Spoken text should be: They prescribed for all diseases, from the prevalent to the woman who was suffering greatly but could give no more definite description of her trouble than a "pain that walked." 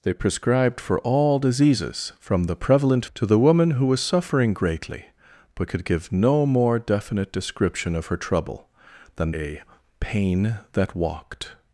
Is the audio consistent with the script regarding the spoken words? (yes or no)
yes